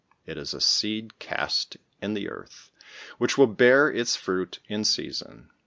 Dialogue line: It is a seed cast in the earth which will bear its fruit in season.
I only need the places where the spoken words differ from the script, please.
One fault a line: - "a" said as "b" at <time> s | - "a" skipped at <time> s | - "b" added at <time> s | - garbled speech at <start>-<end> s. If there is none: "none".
none